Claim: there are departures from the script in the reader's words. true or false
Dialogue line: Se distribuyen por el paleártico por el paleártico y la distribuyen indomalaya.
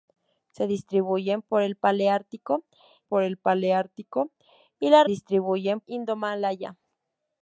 false